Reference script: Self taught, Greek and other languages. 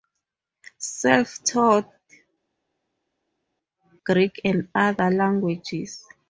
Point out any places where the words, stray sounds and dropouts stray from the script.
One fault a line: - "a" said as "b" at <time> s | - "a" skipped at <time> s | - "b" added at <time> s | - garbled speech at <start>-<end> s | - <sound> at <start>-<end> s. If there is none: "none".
none